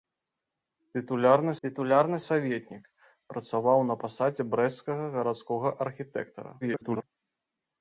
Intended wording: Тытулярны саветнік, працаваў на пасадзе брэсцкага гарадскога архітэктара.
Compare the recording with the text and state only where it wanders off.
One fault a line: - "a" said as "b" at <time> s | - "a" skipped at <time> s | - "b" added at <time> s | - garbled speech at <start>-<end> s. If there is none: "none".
- "тытулярны" added at 1.6 s
- garbled speech at 6.6-7.0 s